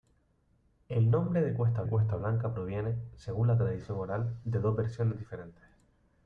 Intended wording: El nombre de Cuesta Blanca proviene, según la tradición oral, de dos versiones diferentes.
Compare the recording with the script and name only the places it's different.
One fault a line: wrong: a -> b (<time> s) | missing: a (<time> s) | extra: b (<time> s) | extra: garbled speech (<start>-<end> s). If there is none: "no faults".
extra: Cuesta (1.9 s)